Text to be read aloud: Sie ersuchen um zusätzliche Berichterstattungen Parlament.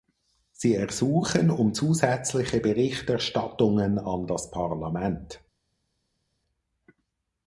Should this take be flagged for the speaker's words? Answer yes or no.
yes